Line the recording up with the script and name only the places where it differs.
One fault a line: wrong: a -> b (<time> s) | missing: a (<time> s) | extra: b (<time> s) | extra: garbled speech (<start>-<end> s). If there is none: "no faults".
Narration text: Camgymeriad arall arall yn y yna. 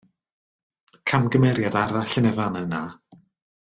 missing: arall (2.2 s)
extra: fan (2.4 s)